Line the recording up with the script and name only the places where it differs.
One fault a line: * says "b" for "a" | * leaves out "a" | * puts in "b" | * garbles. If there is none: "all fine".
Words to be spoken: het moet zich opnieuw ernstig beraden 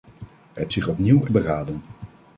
* leaves out "moet"
* leaves out "ernstig"